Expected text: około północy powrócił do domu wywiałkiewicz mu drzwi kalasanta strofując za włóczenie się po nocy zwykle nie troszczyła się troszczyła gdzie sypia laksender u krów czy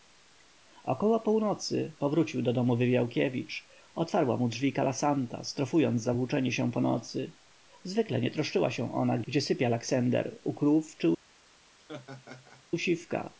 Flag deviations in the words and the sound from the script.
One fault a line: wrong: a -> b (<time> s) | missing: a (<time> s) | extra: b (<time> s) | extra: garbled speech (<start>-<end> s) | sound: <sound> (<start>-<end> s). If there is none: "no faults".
extra: otwarła (3.9 s)
wrong: troszczyła -> ona (8.9 s)
sound: laugh (11.8-12.6 s)